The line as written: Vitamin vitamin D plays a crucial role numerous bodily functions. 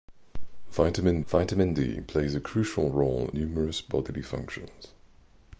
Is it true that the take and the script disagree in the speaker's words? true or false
false